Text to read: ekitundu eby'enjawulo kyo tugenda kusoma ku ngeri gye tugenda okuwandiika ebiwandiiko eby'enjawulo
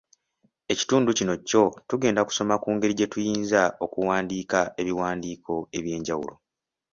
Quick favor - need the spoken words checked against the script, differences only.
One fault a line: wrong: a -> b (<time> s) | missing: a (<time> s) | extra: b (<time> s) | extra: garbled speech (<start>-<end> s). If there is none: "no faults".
wrong: eby'enjawulo -> kino (1.2 s)
wrong: tugenda -> tuyinza (3.1 s)